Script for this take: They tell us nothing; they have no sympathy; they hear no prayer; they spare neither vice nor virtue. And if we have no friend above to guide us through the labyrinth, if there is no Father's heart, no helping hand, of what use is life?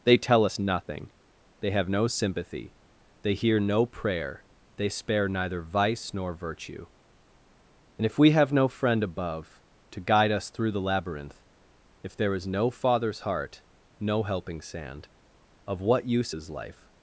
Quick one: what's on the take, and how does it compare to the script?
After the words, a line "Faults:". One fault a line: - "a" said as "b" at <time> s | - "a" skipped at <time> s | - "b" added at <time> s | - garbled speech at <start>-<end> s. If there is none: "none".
They tell us nothing; they have no sympathy; they hear no prayer; they spare neither vice nor virtue. And if we have no friend above to guide us through the labyrinth, if there is no Father's heart, no helping sand, of what use is life?
Faults:
- "hand" said as "sand" at 14.6 s